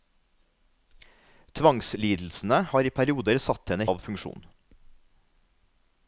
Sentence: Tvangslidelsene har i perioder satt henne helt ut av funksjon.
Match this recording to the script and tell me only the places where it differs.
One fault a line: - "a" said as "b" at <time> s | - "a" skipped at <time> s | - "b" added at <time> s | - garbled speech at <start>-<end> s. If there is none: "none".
- "helt ut" skipped at 3.9 s